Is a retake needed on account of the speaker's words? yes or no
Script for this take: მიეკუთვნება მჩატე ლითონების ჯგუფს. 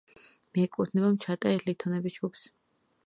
no